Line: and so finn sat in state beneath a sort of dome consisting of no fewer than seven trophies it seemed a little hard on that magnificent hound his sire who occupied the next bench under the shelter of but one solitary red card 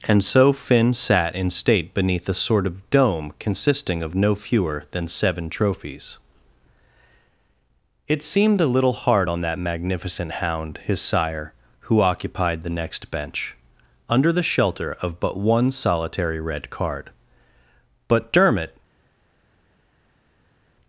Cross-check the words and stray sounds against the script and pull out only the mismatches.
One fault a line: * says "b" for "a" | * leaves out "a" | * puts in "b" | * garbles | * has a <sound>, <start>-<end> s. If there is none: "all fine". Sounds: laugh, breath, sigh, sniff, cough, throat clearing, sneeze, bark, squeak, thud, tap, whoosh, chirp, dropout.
* puts in "but dermot"